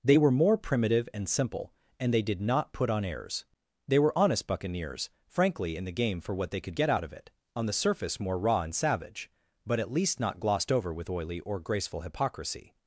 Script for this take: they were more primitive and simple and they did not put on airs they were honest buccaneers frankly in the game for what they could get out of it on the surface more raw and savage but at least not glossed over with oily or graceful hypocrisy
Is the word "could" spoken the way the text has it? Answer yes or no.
yes